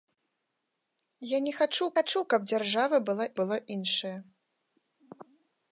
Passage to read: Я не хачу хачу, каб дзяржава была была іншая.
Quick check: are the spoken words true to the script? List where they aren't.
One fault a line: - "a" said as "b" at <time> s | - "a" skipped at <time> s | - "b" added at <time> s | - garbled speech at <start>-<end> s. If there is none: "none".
none